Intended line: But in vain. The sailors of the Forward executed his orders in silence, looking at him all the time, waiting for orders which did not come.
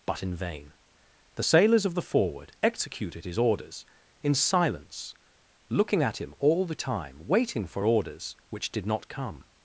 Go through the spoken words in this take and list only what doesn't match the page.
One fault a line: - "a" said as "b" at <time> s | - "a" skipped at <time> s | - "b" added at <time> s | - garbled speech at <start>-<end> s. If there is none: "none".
none